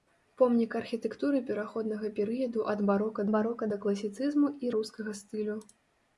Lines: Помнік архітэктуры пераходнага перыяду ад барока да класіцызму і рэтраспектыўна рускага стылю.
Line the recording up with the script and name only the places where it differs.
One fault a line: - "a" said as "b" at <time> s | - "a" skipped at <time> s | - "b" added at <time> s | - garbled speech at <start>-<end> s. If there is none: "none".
- "барока" added at 3.3 s
- "рэтраспектыўна" skipped at 4.7 s